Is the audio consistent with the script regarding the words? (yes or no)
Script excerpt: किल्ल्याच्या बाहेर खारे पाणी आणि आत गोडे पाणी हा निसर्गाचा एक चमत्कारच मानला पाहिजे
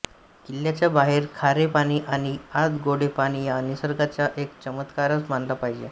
yes